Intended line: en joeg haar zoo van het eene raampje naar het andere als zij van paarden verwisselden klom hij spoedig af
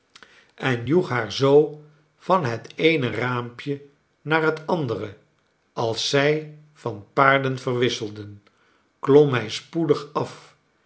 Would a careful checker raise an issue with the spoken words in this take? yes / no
no